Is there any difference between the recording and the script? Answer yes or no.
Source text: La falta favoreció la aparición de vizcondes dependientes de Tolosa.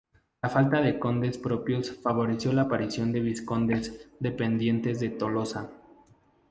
yes